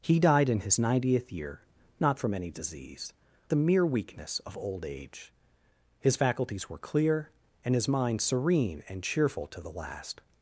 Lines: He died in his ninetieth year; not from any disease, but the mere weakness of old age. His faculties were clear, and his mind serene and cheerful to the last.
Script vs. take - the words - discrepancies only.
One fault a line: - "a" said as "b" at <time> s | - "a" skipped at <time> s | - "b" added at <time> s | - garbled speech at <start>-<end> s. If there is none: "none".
- "but" skipped at 3.1 s